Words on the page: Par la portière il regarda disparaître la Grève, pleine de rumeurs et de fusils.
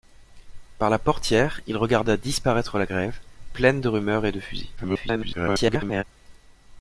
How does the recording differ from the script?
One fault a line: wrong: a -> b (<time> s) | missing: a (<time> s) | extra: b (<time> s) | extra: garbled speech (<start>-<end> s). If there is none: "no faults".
extra: garbled speech (4.8-6.0 s)